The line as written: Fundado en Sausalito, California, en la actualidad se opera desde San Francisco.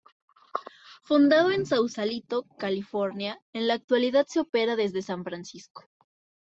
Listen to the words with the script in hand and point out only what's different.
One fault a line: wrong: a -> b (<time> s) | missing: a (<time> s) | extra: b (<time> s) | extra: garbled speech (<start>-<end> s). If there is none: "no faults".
no faults